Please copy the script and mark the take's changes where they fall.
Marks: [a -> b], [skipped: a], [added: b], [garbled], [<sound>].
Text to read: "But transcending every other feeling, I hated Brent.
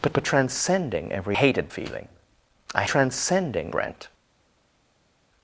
"But [added: but] transcending every [other -> hated] feeling, I [hated -> transcending] Brent.